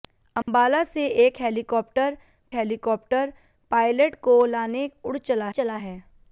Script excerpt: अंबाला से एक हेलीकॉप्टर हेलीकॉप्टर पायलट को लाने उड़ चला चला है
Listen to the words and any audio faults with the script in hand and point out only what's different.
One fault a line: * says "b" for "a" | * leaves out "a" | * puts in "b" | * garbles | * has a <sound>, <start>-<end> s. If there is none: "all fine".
* has a dropout, 0.4-0.5 s